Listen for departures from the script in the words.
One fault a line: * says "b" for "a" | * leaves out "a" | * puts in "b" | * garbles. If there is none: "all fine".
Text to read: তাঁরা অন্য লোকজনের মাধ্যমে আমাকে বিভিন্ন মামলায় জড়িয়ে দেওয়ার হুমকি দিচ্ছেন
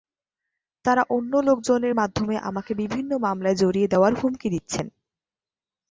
all fine